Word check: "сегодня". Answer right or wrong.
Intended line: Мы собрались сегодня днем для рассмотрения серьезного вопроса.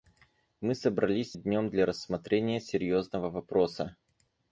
wrong